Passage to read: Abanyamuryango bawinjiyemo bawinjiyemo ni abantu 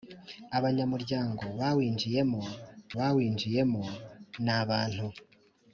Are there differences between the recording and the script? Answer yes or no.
no